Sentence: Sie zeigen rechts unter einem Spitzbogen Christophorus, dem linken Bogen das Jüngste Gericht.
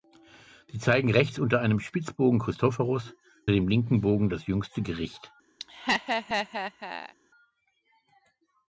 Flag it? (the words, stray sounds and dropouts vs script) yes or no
yes